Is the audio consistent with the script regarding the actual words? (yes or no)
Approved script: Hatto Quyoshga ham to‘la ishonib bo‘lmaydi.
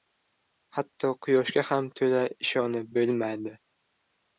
yes